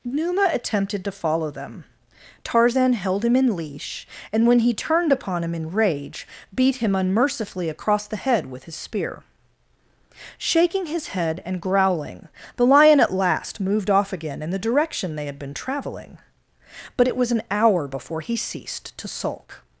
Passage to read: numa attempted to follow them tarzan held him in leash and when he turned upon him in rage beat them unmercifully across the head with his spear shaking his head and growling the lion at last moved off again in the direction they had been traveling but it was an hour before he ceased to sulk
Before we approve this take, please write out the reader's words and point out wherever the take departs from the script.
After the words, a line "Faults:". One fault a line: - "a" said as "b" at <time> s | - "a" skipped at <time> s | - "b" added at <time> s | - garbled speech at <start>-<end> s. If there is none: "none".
numa attempted to follow them tarzan held him in leash and when he turned upon him in rage beat him unmercifully across the head with his spear shaking his head and growling the lion at last moved off again in the direction they had been traveling but it was an hour before he ceased to sulk
Faults:
- "them" said as "him" at 6.8 s